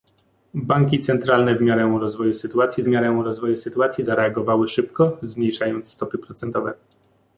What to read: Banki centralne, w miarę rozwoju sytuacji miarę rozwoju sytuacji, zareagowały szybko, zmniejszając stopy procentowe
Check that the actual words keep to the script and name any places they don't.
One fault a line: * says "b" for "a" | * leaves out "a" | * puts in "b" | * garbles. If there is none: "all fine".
all fine